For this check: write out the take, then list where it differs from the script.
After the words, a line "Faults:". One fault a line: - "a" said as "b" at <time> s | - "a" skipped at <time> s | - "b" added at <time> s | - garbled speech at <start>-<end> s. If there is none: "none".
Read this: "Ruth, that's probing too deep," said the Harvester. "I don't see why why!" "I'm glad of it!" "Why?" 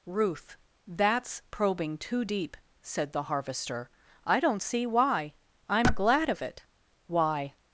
"Ruth, that's probing too deep," said the Harvester. "I don't see why!" "I'm glad of it!" "Why?"
Faults:
- "why" skipped at 5.3 s